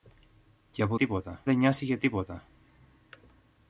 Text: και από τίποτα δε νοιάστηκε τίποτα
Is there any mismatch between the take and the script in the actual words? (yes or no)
no